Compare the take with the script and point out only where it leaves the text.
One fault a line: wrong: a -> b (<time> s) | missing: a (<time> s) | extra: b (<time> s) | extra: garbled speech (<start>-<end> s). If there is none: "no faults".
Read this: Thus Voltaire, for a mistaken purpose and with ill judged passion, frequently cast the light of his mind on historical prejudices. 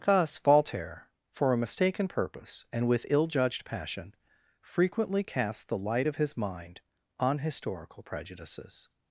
no faults